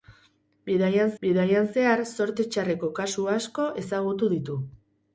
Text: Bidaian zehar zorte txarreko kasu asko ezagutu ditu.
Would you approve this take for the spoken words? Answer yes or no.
no